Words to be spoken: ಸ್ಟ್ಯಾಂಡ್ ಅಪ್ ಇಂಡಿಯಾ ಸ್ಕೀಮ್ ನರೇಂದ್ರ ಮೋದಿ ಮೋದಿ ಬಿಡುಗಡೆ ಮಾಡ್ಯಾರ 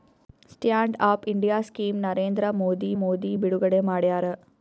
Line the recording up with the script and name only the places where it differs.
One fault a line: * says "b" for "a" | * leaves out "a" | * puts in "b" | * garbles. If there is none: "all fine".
all fine